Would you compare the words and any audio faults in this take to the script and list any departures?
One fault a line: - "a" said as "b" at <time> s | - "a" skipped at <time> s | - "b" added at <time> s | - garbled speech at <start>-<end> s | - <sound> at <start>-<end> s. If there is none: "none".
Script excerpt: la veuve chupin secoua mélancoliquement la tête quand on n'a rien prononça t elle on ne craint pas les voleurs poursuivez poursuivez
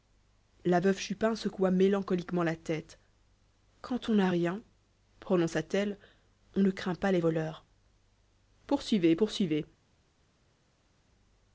none